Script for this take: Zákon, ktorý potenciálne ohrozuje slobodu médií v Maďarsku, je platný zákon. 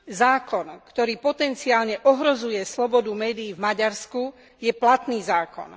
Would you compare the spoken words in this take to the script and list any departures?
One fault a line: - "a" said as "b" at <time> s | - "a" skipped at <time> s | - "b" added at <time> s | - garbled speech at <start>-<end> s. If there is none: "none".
none